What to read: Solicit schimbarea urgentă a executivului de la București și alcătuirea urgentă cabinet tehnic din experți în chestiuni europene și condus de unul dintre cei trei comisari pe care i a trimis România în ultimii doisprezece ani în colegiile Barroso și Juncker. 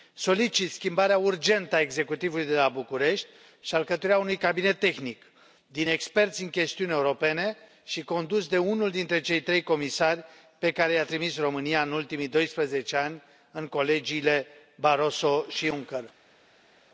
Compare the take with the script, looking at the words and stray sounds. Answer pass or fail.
fail